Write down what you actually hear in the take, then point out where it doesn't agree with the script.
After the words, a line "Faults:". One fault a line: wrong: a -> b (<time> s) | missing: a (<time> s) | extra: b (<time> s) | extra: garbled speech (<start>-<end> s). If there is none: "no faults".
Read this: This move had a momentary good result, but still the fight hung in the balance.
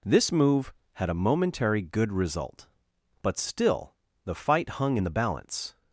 This move had a momentary good result, but still the fight hung in the balance.
Faults:
no faults